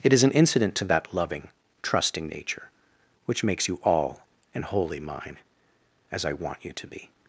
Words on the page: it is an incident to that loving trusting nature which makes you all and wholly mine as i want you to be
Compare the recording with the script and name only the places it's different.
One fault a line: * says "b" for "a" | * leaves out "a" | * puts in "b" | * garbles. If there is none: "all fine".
all fine